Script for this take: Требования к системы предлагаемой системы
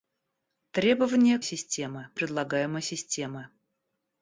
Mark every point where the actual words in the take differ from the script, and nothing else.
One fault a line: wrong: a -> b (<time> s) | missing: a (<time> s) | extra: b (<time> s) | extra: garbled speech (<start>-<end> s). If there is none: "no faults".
no faults